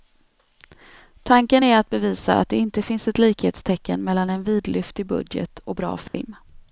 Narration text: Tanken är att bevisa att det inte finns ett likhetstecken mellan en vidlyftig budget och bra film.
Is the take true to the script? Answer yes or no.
yes